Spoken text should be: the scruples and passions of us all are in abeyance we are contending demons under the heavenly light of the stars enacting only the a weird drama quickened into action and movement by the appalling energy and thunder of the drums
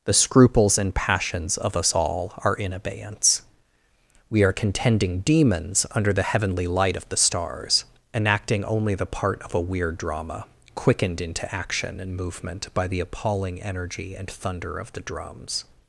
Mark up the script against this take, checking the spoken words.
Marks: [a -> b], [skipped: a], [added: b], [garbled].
the scruples and passions of us all are in abeyance we are contending demons under the heavenly light of the stars enacting only the [added: part of] a weird drama quickened into action and movement by the appalling energy and thunder of the drums